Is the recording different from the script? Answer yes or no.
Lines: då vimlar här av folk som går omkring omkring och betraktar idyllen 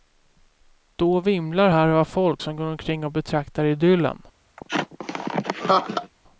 yes